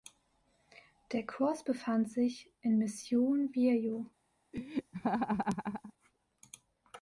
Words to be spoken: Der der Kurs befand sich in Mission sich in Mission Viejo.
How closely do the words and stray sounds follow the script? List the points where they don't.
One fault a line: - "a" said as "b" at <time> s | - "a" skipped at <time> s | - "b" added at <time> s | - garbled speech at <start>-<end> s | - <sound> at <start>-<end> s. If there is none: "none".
- "der" skipped at 1.3 s
- "sich in Mission" skipped at 3.5 s
- laugh at 4.5-5.9 s